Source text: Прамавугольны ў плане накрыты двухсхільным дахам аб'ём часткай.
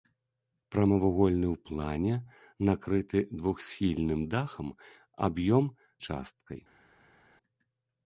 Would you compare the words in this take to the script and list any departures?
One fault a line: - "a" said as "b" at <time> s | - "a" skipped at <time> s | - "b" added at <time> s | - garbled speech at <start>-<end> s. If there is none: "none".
none